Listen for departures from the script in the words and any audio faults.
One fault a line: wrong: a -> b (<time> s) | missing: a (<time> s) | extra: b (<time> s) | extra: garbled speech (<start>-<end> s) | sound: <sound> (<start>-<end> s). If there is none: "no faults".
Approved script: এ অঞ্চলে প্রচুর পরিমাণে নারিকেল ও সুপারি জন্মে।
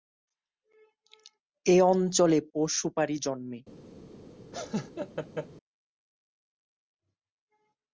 missing: প্রচুর পরিমাণে নারিকেল (2.4 s)
sound: laugh (4.5-5.5 s)